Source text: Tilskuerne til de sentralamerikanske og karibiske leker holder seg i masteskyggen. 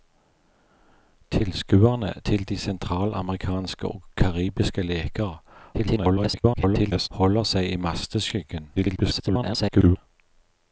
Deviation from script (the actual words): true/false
true